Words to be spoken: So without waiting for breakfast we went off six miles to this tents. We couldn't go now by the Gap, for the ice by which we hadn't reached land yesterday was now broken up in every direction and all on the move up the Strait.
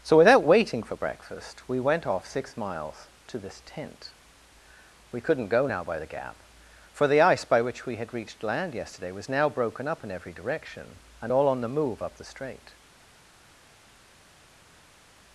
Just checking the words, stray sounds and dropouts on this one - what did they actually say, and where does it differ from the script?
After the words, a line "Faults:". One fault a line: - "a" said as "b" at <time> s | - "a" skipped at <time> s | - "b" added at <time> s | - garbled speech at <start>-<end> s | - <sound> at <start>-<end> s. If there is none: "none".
So without waiting for breakfast we went off six miles to this tent. We couldn't go now by the Gap, for the ice by which we had reached land yesterday was now broken up in every direction and all on the move up the Strait.
Faults:
- "tents" said as "tent" at 3.6 s
- "hadn't" said as "had" at 8.0 s